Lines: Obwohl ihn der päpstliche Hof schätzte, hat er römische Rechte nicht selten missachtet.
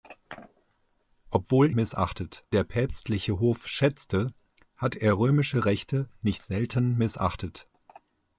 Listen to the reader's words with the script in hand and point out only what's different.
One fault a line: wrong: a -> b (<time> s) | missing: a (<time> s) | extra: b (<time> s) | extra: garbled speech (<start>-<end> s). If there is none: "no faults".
wrong: ihn -> missachtet (1.7 s)